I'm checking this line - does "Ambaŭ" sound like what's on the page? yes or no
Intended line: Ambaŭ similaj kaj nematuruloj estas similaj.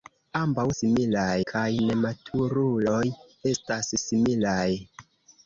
yes